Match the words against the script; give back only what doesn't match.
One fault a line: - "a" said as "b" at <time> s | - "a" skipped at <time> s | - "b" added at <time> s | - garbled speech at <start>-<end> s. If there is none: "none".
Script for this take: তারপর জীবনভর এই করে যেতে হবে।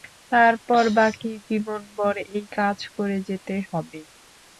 - "বাকি" added at 1.0 s
- "কাজ" added at 2.6 s